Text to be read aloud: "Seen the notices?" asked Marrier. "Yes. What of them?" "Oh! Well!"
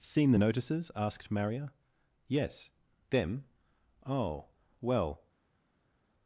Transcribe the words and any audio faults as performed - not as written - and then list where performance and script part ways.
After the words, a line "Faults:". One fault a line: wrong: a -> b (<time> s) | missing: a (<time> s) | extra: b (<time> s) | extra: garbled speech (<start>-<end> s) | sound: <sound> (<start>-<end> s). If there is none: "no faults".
"Seen the notices?" asked Marrier. "Yes. them?" "Oh! Well!"
Faults:
missing: What of (2.7 s)